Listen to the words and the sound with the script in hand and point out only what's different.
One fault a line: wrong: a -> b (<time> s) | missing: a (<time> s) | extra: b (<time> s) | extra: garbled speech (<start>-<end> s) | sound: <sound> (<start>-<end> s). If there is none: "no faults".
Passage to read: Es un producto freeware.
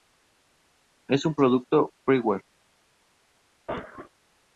sound: cough (3.7-4.1 s)